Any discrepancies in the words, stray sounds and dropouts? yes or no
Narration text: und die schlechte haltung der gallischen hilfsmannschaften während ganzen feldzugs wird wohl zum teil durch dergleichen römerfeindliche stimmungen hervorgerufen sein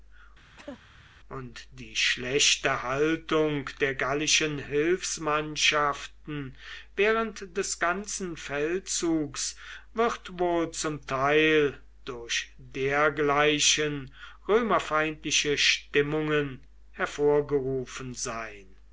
yes